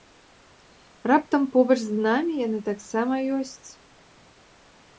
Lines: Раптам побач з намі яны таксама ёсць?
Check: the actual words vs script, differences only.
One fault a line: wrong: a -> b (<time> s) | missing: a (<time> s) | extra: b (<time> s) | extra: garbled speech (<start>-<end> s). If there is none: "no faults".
no faults